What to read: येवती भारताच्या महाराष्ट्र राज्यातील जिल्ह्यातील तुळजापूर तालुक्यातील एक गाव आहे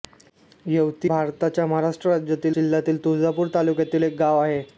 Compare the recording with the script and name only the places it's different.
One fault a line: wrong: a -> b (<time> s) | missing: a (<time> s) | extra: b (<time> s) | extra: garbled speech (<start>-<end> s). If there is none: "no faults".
no faults